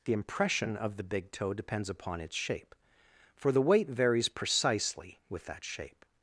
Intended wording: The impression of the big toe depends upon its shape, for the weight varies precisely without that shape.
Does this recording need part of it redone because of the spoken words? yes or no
yes